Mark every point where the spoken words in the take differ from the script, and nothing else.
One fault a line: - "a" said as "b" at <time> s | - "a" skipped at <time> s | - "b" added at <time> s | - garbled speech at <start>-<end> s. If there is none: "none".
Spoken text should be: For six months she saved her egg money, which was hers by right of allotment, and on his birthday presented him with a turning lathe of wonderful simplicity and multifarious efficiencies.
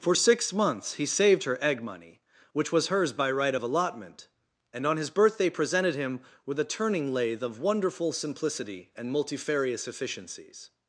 - "she" said as "he" at 0.9 s